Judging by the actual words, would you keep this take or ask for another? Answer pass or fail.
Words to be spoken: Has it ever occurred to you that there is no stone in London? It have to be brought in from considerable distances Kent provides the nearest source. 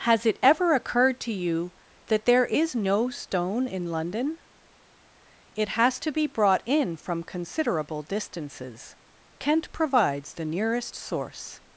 fail